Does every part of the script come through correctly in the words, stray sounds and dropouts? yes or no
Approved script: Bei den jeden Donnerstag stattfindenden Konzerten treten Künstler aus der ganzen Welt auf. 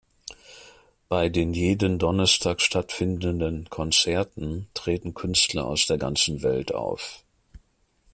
yes